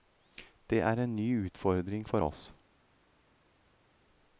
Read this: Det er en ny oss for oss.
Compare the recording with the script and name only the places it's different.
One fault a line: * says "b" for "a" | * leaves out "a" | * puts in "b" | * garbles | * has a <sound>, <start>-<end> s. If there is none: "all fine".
* says "utfordring" for "oss"